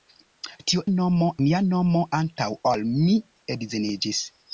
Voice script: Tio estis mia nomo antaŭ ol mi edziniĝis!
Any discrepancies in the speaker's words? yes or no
yes